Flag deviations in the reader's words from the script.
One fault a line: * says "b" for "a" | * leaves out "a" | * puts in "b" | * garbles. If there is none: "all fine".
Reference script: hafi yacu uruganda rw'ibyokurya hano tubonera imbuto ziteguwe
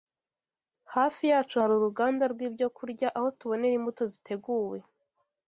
* puts in "hari"
* says "aho" for "hano"